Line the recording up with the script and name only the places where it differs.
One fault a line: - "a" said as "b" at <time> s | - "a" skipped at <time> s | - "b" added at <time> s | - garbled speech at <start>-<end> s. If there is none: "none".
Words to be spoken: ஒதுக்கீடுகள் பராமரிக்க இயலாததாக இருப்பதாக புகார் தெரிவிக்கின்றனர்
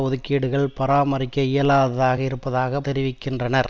- "புகார்" skipped at 2.8 s